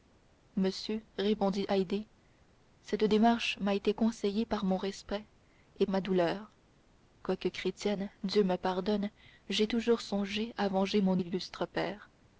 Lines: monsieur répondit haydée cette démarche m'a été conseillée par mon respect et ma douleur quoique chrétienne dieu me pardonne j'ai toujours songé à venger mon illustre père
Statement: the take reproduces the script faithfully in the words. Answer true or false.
true